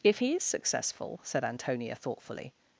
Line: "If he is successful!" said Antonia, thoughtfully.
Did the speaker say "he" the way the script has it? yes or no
yes